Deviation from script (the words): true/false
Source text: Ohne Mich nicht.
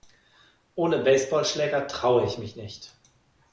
true